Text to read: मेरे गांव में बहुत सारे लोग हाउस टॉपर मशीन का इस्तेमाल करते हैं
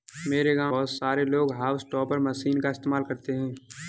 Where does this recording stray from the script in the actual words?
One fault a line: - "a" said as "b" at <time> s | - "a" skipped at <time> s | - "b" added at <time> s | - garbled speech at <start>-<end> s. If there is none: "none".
- "में" skipped at 0.7 s